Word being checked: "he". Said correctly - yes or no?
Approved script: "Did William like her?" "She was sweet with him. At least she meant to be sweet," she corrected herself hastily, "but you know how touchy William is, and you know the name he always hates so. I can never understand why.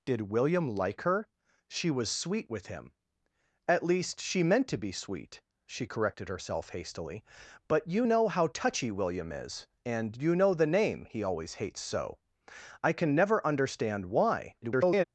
yes